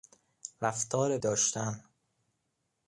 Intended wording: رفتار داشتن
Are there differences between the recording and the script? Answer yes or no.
no